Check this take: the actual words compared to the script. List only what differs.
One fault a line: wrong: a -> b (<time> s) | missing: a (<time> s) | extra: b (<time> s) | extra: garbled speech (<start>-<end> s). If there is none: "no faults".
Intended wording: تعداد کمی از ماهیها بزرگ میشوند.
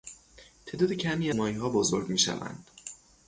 missing: از (1.3 s)